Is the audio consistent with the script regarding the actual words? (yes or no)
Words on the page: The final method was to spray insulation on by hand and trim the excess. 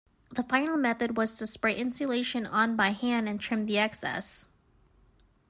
yes